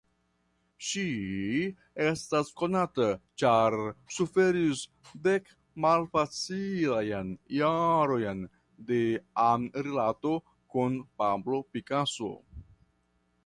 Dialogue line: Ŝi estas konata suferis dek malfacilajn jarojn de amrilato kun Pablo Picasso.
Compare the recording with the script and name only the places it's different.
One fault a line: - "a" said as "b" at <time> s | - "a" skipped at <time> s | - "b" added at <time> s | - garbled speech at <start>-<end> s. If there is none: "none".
- "ĉar" added at 3.4 s